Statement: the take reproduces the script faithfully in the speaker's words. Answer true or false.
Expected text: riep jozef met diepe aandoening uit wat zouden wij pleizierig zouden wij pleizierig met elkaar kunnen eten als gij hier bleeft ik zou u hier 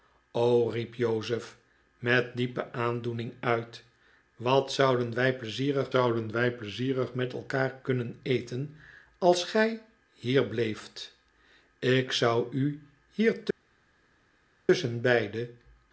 true